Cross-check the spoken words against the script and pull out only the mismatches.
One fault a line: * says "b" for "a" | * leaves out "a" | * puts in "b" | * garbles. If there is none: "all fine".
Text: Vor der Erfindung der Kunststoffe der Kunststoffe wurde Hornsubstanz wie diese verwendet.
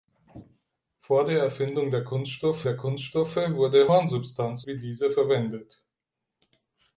all fine